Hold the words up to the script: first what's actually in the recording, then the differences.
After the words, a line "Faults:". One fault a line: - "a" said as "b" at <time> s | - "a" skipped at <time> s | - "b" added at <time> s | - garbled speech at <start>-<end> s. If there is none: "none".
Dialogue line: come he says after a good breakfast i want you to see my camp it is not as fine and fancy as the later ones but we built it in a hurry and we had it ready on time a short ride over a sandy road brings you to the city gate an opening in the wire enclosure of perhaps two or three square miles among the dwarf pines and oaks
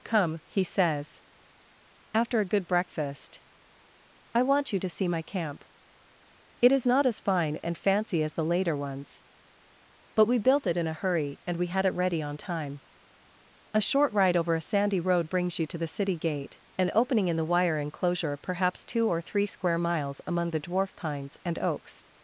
come he says after a good breakfast i want you to see my camp it is not as fine and fancy as the later ones but we built it in a hurry and we had it ready on time a short ride over a sandy road brings you to the city gate an opening in the wire enclosure perhaps two or three square miles among the dwarf pines and oaks
Faults:
- "of" skipped at 18.4 s